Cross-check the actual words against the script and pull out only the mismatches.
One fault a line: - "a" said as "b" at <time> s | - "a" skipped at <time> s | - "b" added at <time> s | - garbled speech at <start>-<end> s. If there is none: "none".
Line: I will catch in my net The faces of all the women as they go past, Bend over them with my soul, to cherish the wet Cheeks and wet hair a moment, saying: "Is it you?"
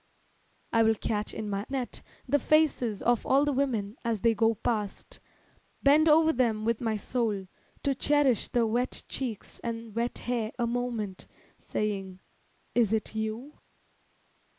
none